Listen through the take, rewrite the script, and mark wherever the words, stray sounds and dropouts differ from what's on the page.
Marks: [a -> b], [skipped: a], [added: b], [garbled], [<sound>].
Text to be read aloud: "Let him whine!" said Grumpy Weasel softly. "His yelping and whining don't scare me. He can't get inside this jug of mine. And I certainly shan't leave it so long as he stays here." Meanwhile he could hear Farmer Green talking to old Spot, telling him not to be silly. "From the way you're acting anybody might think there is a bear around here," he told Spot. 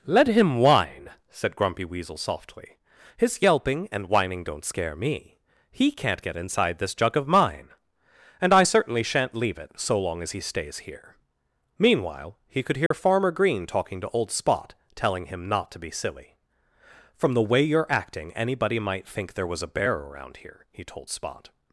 "Let him whine!" said Grumpy Weasel softly. "His yelping and whining don't scare me. He can't get inside this jug of mine. And I certainly shan't leave it so long as he stays here." Meanwhile he could hear [dropout] Farmer Green talking to old Spot, telling him not to be silly. "From the way you're acting anybody might think there [is -> was] a bear around here," he told Spot.